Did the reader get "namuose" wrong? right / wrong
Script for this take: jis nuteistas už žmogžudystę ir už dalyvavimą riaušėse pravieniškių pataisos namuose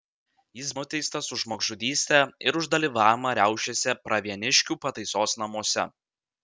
right